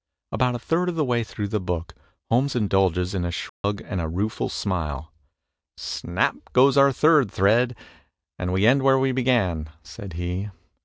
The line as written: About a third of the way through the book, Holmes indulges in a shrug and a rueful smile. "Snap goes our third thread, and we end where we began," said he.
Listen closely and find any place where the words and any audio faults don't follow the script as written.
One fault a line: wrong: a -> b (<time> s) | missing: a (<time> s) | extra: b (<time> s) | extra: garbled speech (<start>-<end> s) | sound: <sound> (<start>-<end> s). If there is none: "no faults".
sound: dropout (3.5-3.6 s)